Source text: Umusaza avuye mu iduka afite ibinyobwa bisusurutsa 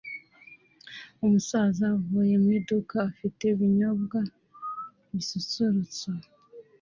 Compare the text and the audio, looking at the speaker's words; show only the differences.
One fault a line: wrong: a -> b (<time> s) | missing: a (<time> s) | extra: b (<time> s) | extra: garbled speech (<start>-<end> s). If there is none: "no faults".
no faults